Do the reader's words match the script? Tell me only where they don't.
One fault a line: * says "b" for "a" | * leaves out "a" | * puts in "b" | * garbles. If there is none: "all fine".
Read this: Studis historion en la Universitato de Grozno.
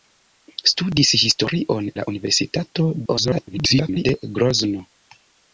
* leaves out "en"
* garbles